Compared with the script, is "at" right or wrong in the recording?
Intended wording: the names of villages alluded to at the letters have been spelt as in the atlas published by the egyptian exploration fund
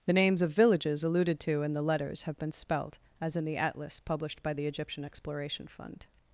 wrong